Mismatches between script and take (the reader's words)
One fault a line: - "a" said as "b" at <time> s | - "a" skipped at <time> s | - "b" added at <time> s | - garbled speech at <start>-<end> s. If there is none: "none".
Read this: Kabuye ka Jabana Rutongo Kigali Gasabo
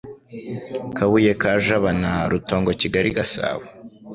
none